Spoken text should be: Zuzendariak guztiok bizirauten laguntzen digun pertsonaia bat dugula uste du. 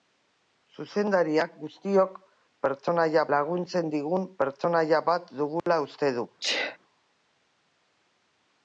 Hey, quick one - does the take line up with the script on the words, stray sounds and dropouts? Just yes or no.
no